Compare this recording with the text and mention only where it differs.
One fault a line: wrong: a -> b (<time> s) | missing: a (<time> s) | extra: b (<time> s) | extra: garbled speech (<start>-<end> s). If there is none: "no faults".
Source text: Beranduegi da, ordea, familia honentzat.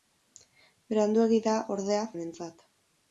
missing: familia (2.0 s)